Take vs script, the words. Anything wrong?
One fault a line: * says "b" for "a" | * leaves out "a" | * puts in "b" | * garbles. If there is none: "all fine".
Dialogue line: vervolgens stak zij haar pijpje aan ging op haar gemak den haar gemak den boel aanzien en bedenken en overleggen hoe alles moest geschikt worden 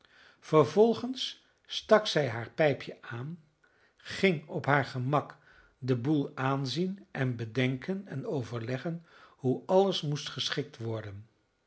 * leaves out "haar gemak den"